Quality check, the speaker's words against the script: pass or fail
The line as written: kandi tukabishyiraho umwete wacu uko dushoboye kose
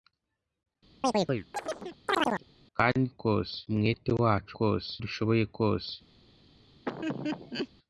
fail